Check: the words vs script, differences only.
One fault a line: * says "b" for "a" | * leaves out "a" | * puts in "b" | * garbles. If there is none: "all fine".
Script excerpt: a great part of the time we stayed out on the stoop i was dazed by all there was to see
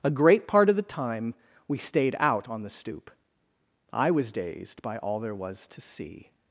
all fine